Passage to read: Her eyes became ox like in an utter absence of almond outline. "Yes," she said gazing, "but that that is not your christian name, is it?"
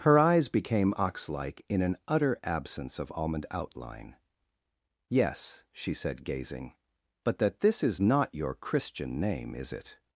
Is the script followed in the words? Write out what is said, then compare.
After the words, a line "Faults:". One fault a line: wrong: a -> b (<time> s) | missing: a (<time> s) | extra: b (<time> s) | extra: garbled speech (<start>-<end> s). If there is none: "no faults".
Her eyes became ox like in an utter absence of almond outline. "Yes," she said gazing, "but that this is not your christian name, is it?"
Faults:
wrong: that -> this (7.6 s)